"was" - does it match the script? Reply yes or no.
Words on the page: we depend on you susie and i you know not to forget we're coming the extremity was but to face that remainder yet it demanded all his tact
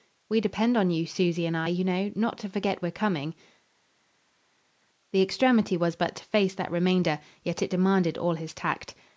yes